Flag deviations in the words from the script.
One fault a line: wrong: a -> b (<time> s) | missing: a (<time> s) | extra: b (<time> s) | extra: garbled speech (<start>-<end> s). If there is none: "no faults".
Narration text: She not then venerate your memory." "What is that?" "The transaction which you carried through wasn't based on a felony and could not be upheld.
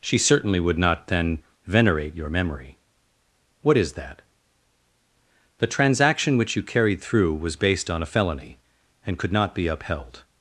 extra: certainly would (0.2 s)
wrong: wasn't -> was (7.3 s)